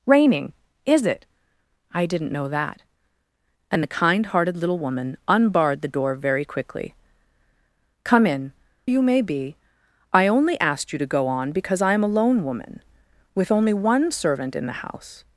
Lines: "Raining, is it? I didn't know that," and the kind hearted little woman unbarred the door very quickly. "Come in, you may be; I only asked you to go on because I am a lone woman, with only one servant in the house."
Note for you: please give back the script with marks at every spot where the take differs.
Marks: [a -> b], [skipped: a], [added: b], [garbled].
"Raining, is it? I didn't know that," and the kind hearted little woman unbarred the door very quickly. "Come in, you may be; I only asked you to go on because I am a lone woman, with only one servant in the house."